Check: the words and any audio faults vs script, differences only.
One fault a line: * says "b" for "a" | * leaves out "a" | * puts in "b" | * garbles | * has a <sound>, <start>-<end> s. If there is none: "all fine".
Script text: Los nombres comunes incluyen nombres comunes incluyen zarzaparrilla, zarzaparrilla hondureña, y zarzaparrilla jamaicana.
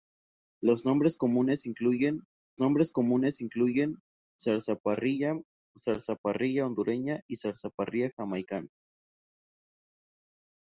all fine